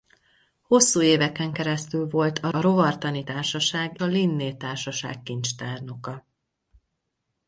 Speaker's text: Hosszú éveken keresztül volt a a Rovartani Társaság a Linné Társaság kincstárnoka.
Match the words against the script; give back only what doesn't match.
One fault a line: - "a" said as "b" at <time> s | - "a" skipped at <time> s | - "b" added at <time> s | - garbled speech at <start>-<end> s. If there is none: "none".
none